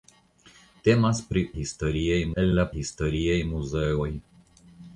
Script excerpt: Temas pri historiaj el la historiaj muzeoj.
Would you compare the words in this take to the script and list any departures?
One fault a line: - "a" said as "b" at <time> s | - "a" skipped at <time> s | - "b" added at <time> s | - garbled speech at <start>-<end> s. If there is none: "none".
none